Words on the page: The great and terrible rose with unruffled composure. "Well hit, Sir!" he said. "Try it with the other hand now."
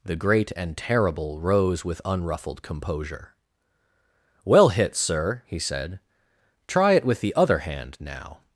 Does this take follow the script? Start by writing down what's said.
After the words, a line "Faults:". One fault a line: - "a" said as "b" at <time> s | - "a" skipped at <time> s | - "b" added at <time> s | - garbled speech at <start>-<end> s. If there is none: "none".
The great and terrible rose with unruffled composure. "Well hit, Sir!" he said. "Try it with the other hand now."
Faults:
none